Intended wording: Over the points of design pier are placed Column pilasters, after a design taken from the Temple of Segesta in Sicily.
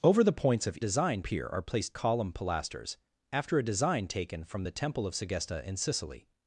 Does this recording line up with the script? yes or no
yes